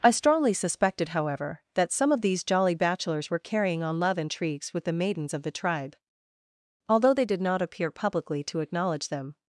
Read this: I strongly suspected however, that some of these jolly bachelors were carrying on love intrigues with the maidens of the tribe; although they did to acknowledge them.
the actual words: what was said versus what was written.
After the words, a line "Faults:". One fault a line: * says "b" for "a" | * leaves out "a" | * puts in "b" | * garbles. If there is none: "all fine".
I strongly suspected however, that some of these jolly bachelors were carrying on love intrigues with the maidens of the tribe; although they did not appear publicly to acknowledge them.
Faults:
* puts in "not appear publicly"